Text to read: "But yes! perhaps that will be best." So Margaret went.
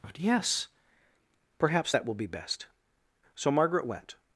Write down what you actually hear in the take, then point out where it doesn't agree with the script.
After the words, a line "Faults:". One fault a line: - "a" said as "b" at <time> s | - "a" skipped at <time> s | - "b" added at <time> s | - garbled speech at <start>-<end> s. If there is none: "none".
"But yes! perhaps that will be best." So Margaret went.
Faults:
none